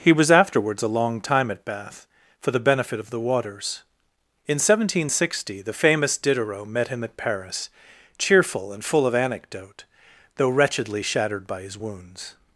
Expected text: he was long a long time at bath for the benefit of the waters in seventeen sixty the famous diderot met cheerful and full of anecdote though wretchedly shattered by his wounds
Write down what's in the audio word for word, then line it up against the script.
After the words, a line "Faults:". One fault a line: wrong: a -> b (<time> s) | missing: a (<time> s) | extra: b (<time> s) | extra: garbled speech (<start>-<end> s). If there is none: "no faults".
he was afterwards a long time at bath for the benefit of the waters in seventeen sixty the famous diderot met him at paris cheerful and full of anecdote though wretchedly shattered by his wounds
Faults:
wrong: long -> afterwards (0.3 s)
extra: him at paris (6.9 s)